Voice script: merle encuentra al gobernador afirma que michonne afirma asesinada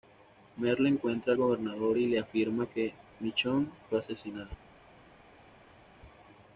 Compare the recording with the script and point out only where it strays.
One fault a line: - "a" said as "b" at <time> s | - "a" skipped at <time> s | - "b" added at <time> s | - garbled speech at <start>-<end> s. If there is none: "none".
- "y le" added at 2.0 s
- "afirma" said as "fue" at 3.9 s